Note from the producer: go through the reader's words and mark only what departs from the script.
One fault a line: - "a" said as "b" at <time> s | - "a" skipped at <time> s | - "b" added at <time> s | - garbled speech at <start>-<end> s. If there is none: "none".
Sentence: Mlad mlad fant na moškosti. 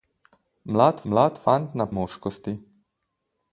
none